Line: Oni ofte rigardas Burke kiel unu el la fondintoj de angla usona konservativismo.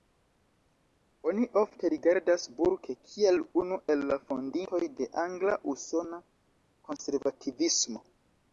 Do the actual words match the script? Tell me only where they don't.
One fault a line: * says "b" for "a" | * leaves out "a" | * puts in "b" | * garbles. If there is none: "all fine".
all fine